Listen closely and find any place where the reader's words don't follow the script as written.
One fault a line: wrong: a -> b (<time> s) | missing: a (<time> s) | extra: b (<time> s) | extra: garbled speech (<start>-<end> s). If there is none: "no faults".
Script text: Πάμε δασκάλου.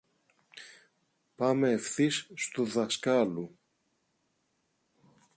extra: ευθύς στου (1.7 s)